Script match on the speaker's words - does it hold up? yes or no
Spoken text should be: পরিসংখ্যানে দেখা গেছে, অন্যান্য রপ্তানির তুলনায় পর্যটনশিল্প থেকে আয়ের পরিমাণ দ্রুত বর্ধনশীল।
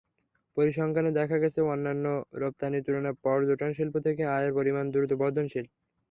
yes